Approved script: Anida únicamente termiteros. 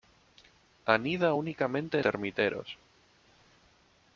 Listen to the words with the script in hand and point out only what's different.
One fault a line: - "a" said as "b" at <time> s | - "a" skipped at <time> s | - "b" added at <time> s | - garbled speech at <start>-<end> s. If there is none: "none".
none